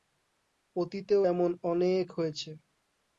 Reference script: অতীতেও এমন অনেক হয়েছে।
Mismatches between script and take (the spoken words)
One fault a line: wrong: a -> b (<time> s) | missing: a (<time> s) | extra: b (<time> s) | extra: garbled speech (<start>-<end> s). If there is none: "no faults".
no faults